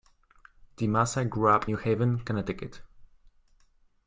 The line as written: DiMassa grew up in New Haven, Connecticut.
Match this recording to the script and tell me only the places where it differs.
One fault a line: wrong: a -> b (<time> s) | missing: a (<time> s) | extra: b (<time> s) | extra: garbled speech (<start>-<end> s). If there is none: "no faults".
missing: in (1.7 s)